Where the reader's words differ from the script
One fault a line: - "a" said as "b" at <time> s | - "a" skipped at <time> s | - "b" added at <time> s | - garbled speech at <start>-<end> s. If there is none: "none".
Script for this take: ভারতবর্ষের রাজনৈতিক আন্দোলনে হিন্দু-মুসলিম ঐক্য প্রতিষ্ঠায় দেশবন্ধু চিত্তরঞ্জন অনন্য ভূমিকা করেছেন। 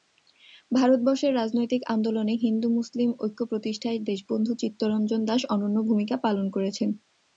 - "দাস" added at 5.2 s
- "পালন" added at 6.2 s